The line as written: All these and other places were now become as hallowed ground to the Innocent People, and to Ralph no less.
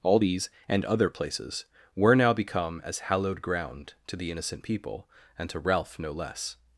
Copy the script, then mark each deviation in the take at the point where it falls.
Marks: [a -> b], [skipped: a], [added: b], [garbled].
All these and other places were now become as hallowed ground to the Innocent People, and to Ralph no less.